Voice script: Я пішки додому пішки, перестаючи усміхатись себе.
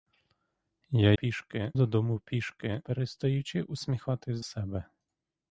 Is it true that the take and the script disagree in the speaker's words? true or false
false